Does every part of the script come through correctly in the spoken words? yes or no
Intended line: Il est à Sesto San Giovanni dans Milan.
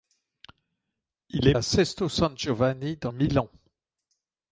yes